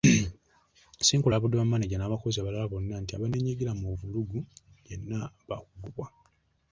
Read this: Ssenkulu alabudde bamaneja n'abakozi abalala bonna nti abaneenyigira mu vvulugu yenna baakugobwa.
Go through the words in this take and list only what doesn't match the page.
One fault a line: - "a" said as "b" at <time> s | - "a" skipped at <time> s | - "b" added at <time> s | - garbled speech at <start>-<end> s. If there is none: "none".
none